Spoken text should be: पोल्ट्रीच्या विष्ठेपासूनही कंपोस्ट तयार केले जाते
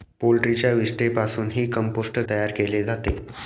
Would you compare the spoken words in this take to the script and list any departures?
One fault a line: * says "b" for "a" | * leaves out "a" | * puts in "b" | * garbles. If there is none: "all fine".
all fine